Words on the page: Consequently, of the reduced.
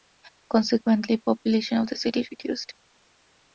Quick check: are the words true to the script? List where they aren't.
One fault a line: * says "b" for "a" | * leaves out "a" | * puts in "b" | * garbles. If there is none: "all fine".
* puts in "population"
* puts in "city"